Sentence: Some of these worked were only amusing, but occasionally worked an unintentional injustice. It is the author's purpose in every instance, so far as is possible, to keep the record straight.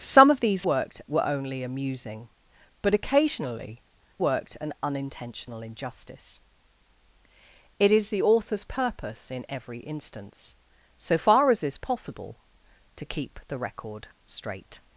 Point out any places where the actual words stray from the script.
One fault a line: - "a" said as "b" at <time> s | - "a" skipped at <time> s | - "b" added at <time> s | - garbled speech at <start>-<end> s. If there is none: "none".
none